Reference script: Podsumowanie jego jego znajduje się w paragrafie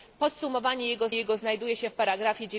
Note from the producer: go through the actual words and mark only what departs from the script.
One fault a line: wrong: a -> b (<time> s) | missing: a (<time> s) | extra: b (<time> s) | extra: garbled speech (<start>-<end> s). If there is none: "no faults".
no faults